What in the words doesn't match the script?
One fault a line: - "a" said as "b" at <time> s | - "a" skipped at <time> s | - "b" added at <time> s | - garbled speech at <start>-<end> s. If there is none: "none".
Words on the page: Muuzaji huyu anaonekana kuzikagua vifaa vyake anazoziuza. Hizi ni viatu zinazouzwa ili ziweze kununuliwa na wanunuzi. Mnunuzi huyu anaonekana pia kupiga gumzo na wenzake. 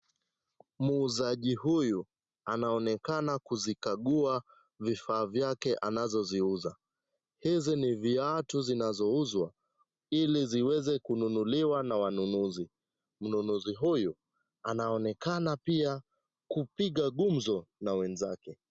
none